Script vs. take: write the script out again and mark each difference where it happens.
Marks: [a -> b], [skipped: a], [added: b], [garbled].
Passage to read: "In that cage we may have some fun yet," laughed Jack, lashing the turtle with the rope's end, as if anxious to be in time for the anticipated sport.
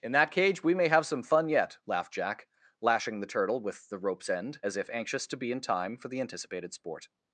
"In that cage we may have some fun yet," laughed Jack, lashing the turtle with the rope's end, as if anxious to be in time for the anticipated sport.